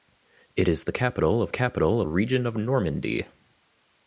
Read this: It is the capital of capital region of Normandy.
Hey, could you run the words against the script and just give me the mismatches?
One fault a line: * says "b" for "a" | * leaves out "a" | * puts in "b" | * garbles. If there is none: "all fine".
all fine